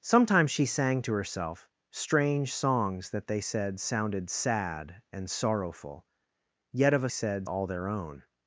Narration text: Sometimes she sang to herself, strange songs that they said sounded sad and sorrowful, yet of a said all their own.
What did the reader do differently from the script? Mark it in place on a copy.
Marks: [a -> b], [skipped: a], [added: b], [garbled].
Sometimes she sang to herself, strange songs that they said sounded sad and sorrowful, yet of a said all their own.